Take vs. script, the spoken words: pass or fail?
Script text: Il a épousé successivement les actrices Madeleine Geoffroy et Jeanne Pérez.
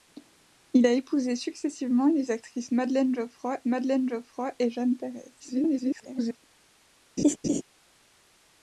fail